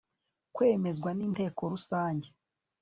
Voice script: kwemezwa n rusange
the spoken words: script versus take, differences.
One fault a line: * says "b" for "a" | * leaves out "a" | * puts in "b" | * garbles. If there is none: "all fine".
* puts in "inteko"